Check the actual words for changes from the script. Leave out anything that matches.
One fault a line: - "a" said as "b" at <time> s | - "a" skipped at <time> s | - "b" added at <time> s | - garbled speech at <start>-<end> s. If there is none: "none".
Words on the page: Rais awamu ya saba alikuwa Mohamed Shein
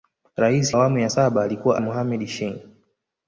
none